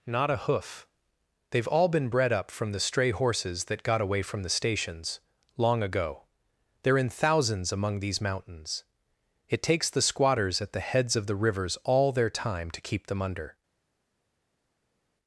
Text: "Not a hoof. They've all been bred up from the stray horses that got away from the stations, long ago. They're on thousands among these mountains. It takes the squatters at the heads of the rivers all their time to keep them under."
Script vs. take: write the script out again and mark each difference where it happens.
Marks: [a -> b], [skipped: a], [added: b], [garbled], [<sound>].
"Not a hoof. They've all been bred up from the stray horses that got away from the stations, long ago. They're [on -> in] thousands among these mountains. It takes the squatters at the heads of the rivers all their time to keep them under."